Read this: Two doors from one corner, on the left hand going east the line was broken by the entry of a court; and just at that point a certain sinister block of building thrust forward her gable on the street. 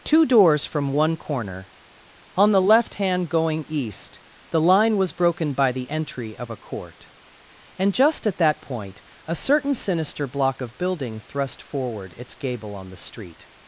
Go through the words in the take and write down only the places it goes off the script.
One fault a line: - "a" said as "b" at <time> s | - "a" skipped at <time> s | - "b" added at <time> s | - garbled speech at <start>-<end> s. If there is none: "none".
- "her" said as "its" at 12.2 s